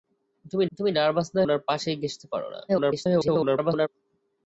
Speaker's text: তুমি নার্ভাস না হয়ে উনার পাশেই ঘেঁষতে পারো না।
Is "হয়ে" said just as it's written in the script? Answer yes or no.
no